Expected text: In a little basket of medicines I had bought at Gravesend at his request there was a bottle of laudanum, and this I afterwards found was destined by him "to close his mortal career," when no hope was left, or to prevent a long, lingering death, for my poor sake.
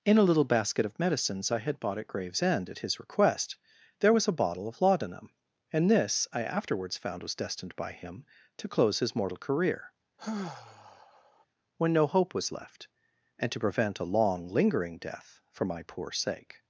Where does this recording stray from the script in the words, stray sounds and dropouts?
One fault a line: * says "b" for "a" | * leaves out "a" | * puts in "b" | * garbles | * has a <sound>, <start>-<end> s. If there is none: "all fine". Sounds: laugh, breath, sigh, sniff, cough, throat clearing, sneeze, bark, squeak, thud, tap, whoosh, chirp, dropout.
* has a sigh, 10.2-11.5 s
* says "and" for "or"